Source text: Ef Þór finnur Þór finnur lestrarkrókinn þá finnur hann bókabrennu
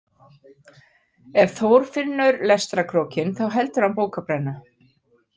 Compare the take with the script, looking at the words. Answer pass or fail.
fail